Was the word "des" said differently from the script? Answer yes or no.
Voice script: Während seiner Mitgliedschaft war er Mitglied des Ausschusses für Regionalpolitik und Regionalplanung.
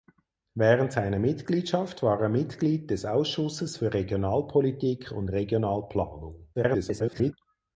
no